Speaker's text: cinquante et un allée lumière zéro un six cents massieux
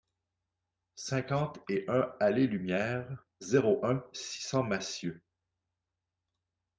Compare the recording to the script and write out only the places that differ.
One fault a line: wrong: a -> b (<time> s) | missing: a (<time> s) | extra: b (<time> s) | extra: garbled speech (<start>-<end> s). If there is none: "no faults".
no faults